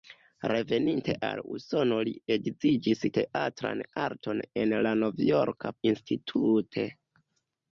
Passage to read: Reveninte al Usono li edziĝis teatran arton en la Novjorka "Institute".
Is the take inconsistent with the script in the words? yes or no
no